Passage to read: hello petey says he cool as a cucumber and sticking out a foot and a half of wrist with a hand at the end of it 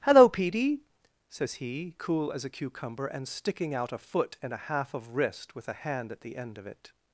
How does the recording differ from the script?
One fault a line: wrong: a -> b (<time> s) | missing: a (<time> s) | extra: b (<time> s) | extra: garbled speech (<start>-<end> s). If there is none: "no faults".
no faults